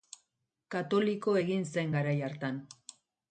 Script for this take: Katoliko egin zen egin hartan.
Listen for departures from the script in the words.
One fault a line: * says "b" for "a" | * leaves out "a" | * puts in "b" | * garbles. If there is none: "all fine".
* says "garai" for "egin"